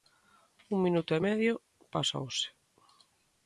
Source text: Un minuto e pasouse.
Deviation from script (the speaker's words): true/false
true